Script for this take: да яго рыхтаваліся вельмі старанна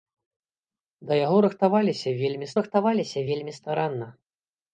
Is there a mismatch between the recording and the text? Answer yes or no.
yes